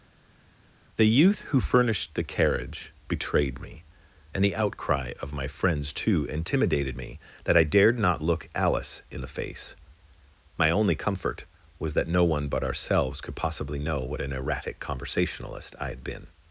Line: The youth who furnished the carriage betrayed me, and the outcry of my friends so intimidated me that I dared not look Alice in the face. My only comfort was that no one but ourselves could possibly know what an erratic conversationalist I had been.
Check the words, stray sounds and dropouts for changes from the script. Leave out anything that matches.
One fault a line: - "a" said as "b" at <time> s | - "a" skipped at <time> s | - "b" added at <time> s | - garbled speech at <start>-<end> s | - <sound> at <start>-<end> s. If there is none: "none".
- "so" said as "too" at 5.9 s